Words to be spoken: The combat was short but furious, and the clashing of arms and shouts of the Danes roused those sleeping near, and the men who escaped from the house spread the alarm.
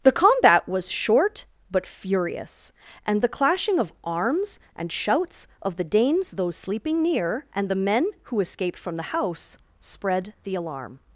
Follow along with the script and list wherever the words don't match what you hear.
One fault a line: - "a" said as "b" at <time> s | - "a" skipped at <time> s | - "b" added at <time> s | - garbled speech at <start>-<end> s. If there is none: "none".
- "roused" skipped at 6.3 s